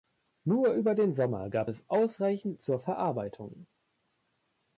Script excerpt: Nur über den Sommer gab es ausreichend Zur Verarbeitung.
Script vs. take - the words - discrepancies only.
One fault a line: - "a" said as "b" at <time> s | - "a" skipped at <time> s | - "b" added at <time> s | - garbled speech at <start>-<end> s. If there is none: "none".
none